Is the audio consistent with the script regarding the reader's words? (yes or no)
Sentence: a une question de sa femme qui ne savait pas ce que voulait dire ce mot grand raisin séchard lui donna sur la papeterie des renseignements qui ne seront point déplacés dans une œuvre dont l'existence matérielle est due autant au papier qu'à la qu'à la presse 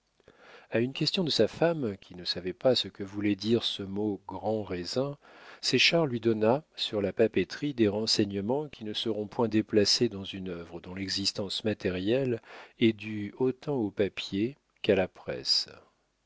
no